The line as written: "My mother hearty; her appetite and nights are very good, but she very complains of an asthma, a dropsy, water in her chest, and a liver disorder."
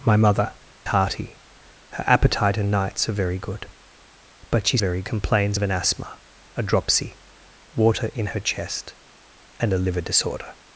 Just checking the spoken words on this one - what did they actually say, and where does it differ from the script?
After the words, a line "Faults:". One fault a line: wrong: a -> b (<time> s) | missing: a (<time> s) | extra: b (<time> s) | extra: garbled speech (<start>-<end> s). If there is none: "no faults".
"My mother hearty; her appetite and nights are very good, but she very complains of an asthma, a dropsy, water in her chest, and a liver disorder."
Faults:
no faults